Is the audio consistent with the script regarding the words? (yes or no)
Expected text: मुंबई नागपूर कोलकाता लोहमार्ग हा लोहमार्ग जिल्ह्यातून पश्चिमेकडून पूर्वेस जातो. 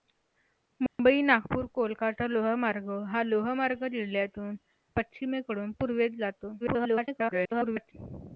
no